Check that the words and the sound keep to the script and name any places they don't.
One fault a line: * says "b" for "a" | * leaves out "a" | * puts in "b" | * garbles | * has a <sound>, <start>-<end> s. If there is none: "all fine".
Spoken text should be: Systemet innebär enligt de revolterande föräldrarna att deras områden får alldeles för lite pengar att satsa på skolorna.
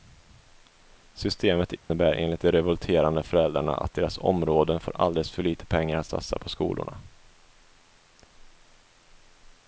* has a dropout, 1.8-1.9 s